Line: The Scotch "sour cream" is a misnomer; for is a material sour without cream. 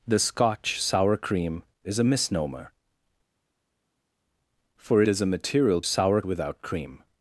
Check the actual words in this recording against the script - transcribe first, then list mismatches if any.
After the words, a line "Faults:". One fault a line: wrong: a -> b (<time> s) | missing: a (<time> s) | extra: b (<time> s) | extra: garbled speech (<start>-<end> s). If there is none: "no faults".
The Scotch "sour cream" is a misnomer; for is a material sour without cream.
Faults:
no faults